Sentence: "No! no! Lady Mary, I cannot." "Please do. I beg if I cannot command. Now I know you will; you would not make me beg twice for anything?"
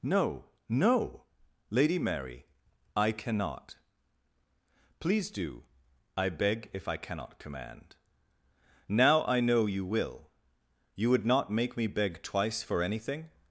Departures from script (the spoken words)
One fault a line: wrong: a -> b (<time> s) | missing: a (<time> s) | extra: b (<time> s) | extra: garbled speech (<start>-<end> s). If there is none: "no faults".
no faults